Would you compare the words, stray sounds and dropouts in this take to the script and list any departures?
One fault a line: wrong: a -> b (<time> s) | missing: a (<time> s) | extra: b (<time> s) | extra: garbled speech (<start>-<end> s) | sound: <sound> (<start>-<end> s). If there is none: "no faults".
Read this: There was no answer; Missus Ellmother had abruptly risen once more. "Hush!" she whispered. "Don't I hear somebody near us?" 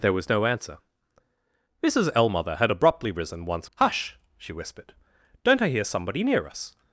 missing: more (3.7 s)